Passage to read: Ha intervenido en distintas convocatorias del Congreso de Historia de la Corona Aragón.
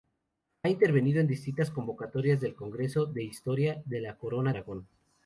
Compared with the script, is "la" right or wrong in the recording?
right